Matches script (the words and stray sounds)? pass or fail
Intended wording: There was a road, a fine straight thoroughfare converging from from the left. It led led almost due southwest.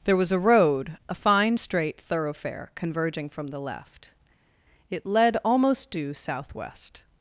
fail